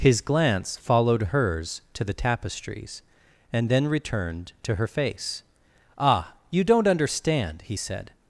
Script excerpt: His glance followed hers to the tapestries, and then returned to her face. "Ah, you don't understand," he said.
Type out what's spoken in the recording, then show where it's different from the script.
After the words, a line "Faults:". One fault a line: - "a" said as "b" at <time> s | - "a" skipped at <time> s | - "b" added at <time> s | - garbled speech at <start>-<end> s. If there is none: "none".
His glance followed hers to the tapestries, and then returned to her face. "Ah, you don't understand," he said.
Faults:
none